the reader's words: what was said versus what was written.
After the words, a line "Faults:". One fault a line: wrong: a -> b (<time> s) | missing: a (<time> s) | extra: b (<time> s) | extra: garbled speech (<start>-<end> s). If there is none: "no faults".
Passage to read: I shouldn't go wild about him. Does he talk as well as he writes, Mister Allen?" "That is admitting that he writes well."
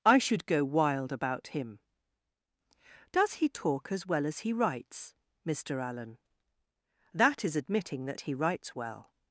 I should go wild about him. Does he talk as well as he writes, Mister Allen?" "That is admitting that he writes well."
Faults:
wrong: shouldn't -> should (0.2 s)